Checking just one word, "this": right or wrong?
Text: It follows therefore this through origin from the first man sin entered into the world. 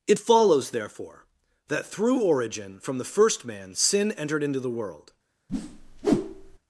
wrong